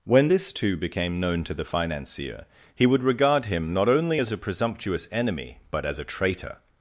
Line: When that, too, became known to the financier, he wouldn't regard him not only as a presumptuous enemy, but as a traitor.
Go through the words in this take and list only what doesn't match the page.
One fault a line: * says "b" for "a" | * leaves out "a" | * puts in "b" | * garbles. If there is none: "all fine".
* says "this" for "that"
* says "would" for "wouldn't"